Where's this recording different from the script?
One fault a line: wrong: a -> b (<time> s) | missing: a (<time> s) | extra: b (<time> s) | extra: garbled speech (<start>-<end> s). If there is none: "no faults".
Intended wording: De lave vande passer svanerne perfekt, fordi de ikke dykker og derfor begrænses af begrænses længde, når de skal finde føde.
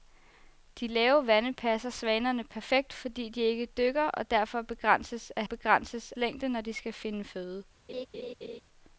no faults